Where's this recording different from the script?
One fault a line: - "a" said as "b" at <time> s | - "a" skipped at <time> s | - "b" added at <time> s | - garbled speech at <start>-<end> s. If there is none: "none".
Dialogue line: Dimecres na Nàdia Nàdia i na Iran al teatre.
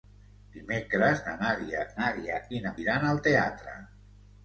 none